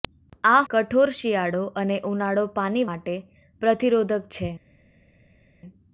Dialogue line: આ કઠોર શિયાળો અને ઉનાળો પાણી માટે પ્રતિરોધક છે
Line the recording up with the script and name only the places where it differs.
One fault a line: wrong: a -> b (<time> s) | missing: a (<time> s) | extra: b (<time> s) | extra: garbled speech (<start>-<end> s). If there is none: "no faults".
no faults